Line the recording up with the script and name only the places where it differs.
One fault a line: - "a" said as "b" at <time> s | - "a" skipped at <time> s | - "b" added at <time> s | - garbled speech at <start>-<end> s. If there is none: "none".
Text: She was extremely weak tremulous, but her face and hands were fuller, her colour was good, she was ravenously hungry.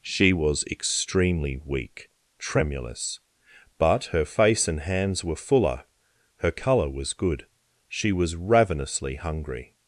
none